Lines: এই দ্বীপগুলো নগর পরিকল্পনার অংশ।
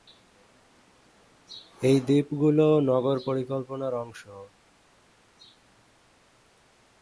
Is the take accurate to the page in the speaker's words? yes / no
yes